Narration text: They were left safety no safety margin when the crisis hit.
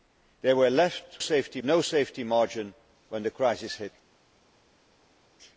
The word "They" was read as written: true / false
true